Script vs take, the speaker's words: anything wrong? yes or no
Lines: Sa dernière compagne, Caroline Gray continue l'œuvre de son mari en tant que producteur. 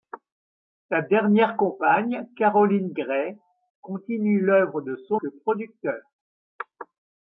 yes